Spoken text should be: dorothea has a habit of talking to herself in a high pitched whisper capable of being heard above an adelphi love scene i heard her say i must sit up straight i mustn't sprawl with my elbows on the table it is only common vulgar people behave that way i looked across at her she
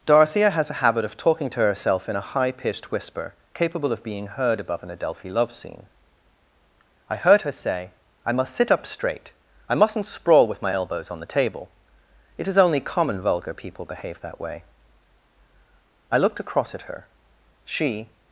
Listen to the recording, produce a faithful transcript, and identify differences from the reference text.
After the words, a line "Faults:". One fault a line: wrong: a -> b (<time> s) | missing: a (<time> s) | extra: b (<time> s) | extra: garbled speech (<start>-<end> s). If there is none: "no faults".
dorothea has a habit of talking to herself in a high pitched whisper capable of being heard above an adelphi love scene i heard her say i must sit up straight i mustn't sprawl with my elbows on the table it is only common vulgar people behave that way i looked across at her she
Faults:
no faults